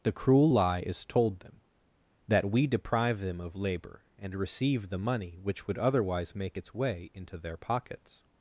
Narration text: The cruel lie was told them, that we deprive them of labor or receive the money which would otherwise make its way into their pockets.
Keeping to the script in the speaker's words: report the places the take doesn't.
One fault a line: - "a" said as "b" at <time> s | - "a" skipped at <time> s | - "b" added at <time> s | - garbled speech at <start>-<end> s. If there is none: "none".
- "was" said as "is" at 0.8 s
- "or" said as "and" at 4.2 s